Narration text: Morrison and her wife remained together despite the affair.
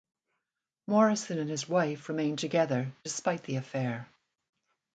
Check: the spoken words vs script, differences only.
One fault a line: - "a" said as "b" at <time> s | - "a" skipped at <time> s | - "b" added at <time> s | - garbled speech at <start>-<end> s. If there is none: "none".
- "her" said as "his" at 1.5 s